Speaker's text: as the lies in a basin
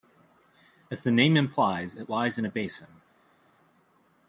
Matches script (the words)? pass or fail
fail